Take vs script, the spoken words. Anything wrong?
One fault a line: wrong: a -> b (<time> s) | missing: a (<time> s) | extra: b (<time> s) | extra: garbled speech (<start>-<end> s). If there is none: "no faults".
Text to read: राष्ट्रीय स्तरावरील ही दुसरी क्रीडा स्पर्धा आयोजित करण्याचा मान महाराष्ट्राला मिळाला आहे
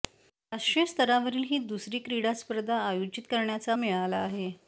missing: मान महाराष्ट्राला (3.8 s)